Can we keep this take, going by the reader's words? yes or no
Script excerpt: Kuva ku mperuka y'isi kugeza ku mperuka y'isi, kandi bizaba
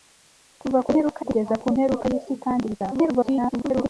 no